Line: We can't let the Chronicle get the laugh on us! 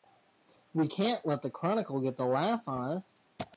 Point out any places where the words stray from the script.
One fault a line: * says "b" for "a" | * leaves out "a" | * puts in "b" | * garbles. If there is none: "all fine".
all fine